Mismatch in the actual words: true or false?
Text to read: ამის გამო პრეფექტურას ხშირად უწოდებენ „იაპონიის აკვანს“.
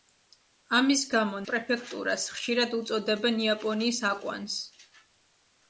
false